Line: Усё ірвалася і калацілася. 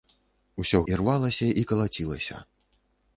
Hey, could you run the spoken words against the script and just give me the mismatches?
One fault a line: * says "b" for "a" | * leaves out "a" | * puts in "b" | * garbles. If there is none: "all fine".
all fine